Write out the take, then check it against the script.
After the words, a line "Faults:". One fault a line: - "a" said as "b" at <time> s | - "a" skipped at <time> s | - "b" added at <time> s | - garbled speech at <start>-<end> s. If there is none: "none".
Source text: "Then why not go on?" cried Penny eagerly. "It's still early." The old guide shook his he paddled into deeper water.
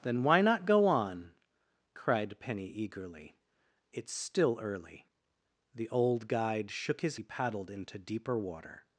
"Then why not go on?" cried Penny eagerly. "It's still early." The old guide shook his he paddled into deeper water.
Faults:
none